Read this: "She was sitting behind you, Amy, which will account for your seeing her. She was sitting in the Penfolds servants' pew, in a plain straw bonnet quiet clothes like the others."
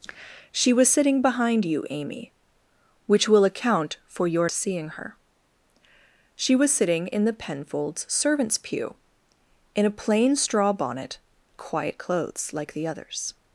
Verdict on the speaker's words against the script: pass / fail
pass